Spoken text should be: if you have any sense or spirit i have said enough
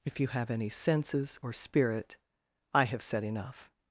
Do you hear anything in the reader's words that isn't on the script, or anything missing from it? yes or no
yes